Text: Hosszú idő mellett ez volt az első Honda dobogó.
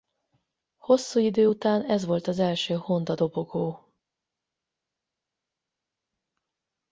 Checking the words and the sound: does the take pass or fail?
fail